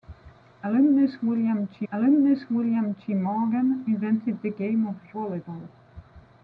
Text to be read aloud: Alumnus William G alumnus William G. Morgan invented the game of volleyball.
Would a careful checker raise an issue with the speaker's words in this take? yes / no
no